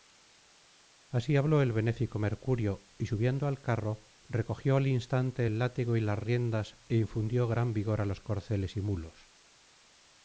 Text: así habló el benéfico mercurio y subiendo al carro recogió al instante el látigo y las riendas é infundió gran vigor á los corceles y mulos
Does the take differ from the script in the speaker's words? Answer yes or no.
no